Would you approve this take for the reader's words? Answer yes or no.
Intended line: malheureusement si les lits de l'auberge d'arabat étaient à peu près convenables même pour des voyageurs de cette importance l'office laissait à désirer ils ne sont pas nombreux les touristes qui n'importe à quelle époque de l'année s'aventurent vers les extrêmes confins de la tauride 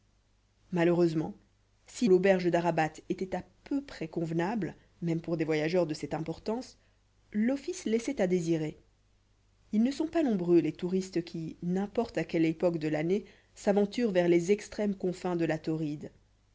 no